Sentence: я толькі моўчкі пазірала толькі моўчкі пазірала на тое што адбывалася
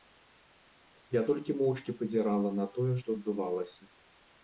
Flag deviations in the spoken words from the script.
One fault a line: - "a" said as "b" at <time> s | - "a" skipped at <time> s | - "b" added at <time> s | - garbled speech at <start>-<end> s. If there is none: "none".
- "толькі моўчкі пазірала" skipped at 2.6 s